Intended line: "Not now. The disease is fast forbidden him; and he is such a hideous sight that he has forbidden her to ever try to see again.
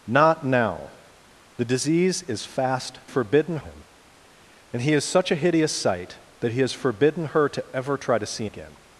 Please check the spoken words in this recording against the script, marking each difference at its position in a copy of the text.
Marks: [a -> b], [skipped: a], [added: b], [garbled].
"Not now. The disease is fast forbidden him; and he is such a hideous sight that he has forbidden her to ever try to see again.